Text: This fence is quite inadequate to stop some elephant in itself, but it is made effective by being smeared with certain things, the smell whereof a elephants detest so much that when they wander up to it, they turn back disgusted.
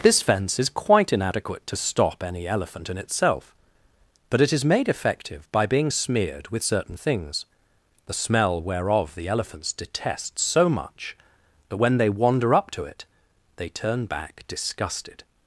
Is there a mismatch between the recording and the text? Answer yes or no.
yes